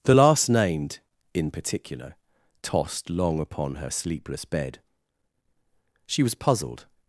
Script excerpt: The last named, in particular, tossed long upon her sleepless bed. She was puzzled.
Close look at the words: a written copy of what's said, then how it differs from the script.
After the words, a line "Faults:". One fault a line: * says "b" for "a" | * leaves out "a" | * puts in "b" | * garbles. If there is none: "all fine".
The last named, in particular, tossed long upon her sleepless bed. She was puzzled.
Faults:
all fine